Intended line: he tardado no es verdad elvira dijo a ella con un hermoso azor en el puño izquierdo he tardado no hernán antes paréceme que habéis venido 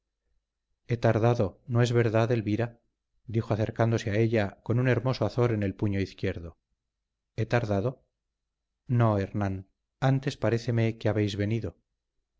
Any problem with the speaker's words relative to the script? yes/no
yes